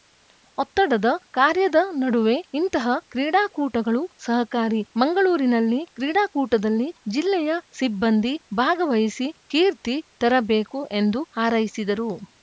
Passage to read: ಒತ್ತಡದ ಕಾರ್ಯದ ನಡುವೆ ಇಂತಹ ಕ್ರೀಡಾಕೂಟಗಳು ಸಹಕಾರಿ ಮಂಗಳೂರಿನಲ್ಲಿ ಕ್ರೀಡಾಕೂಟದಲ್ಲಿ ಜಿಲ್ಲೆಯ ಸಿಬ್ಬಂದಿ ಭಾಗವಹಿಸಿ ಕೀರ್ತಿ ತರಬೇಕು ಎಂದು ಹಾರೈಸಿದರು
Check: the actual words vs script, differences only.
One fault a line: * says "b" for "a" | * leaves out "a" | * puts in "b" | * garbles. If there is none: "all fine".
all fine